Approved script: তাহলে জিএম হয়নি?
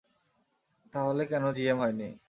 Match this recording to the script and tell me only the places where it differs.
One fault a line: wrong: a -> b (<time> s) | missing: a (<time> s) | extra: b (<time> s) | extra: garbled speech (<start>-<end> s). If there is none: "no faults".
extra: কেন (1.2 s)